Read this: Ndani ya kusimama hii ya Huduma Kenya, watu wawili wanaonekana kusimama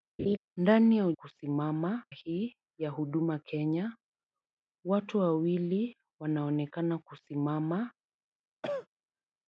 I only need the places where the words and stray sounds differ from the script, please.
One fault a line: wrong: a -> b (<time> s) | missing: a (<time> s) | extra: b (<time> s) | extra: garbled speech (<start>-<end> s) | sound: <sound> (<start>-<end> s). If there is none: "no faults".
sound: laugh (0.2-0.4 s)
sound: cough (8.6-8.9 s)